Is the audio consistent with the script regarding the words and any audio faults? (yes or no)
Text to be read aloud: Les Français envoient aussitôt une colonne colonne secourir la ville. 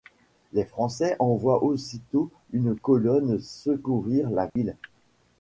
no